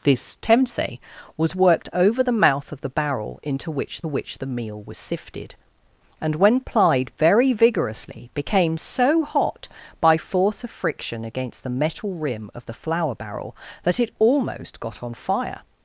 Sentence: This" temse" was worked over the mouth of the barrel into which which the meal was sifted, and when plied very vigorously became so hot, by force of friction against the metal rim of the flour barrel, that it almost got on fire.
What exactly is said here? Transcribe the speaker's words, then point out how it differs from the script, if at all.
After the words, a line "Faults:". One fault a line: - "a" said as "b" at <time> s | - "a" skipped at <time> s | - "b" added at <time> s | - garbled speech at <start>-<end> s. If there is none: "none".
This" temse" was worked over the mouth of the barrel into which which the meal was sifted, and when plied very vigorously became so hot, by force of friction against the metal rim of the flour barrel, that it almost got on fire.
Faults:
none